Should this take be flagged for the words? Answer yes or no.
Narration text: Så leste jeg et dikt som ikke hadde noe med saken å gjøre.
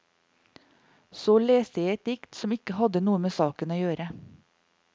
no